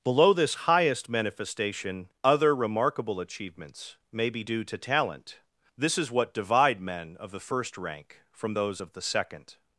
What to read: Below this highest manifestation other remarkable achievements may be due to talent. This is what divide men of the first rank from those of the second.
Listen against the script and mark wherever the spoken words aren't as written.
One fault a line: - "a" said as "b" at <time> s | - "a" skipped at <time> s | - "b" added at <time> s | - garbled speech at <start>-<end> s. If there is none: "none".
none